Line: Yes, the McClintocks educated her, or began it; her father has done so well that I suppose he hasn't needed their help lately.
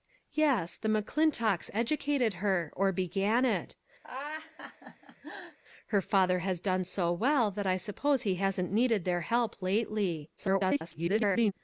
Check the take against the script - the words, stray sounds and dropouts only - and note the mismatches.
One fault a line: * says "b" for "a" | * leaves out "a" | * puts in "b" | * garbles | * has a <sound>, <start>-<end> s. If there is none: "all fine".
* has a laugh, 4.0-5.6 s
* garbles